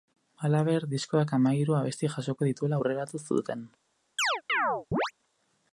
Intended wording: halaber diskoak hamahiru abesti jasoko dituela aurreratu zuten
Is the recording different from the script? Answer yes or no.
no